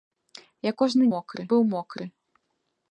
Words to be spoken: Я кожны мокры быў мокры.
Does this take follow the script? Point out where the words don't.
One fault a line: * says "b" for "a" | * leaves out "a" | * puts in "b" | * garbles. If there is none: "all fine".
all fine